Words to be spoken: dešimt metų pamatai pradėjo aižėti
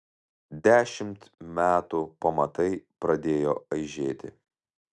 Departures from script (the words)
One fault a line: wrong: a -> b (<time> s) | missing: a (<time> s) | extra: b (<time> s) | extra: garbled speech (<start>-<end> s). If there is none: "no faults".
no faults